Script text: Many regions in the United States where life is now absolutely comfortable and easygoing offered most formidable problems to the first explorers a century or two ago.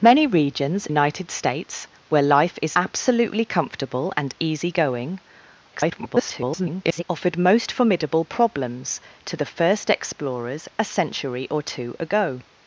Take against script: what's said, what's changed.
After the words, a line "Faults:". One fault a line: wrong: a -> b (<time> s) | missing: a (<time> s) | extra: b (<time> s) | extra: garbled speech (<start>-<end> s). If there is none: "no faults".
Many regions United States where life is absolutely comfortable and easygoing [garbled] offered most formidable problems to the first explorers a century or two ago.
Faults:
missing: in the (0.9 s)
missing: now (2.8 s)
extra: garbled speech (5.7-7.0 s)